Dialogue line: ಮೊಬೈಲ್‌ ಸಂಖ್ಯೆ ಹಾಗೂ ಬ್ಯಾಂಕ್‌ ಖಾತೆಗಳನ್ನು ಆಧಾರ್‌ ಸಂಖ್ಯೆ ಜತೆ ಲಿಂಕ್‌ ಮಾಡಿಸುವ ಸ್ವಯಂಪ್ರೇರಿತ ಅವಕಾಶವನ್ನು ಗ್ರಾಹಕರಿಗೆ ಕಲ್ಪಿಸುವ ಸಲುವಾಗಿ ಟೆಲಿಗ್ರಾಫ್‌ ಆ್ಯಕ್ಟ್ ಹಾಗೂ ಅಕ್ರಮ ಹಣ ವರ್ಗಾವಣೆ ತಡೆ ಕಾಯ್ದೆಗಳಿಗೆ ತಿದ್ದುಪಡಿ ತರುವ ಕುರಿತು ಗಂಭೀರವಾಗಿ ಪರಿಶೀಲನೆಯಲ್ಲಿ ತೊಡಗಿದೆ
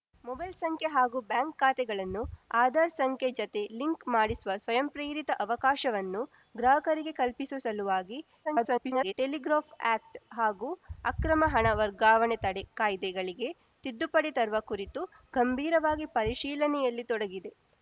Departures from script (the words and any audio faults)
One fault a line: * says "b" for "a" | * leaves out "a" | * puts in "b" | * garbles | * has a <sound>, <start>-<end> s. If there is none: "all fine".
* garbles